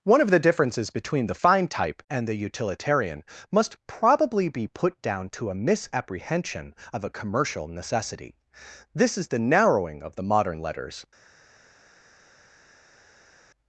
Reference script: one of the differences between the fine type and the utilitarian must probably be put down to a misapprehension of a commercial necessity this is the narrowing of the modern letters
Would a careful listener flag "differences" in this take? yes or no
no